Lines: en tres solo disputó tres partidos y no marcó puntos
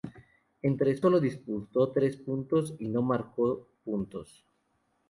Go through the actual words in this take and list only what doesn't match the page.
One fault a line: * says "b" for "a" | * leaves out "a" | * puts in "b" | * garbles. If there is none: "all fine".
all fine